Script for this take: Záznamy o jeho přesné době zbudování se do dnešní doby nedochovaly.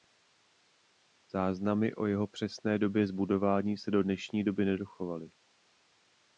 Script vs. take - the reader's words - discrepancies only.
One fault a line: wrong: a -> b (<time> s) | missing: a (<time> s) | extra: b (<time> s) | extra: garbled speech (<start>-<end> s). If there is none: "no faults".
no faults